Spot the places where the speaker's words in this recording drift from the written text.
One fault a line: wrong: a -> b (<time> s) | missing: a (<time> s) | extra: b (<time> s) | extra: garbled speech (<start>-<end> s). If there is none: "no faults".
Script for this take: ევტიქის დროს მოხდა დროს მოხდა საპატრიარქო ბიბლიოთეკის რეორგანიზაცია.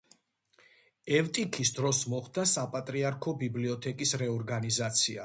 missing: დროს მოხდა (2.5 s)